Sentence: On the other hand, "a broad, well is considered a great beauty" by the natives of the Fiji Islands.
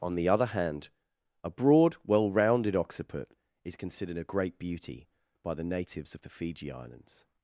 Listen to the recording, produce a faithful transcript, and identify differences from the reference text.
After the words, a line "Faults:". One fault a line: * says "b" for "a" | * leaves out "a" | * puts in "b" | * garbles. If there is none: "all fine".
On the other hand, "a broad, well rounded occiput is considered a great beauty" by the natives of the Fiji Islands.
Faults:
* puts in "rounded occiput"